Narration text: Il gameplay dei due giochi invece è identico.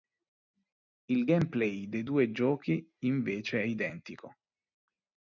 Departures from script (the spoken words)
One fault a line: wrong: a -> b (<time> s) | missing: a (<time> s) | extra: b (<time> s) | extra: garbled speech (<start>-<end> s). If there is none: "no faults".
no faults